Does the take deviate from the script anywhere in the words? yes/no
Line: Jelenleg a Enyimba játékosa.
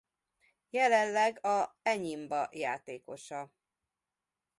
no